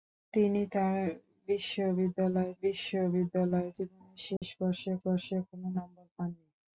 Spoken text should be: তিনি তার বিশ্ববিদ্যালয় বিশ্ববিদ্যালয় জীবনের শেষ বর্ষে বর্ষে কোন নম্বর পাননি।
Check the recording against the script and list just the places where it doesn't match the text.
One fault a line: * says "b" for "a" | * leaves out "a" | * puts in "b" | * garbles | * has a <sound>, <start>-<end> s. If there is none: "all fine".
* has a dropout, 4.4-4.4 s